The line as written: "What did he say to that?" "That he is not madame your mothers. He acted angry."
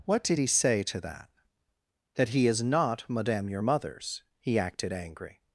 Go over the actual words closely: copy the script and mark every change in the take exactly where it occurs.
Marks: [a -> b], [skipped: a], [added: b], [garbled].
"What did he say to that?" "That he is not madame your mothers. He acted angry."